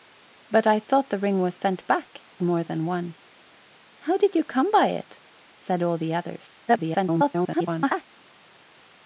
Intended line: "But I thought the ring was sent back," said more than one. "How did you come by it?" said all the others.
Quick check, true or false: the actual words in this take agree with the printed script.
false